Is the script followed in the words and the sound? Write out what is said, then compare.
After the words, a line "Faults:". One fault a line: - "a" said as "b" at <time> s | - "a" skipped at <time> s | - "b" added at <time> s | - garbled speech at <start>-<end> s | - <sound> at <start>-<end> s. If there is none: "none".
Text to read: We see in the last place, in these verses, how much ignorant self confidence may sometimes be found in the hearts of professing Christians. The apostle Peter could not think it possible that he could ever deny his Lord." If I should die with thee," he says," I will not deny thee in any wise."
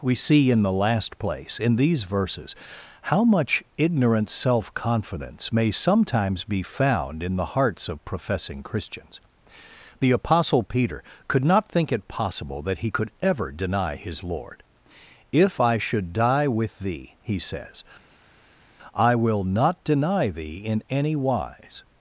We see in the last place, in these verses, how much ignorant self confidence may sometimes be found in the hearts of professing Christians. The apostle Peter could not think it possible that he could ever deny his Lord." If I should die with thee," he says," I will not deny thee in any wise."
Faults:
none